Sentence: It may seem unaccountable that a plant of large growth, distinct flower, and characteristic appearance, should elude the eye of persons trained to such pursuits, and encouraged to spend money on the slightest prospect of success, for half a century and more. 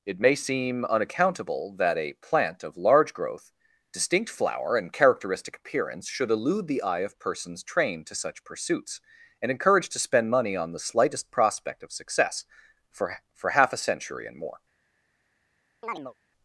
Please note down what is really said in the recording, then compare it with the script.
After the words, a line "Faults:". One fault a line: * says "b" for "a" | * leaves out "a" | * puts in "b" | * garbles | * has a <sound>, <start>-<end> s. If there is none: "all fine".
It may seem unaccountable that a plant of large growth, distinct flower, and characteristic appearance, should elude the eye of persons trained to such pursuits, and encouraged to spend money on the slightest prospect of success, for for half a century and more.
Faults:
* puts in "for"
* has a chirp, 15.8-16.1 s